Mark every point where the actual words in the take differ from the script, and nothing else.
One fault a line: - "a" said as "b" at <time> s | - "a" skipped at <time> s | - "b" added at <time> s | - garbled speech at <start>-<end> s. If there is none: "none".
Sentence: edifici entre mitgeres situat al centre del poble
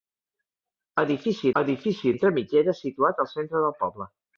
- "edifici" added at 1.6 s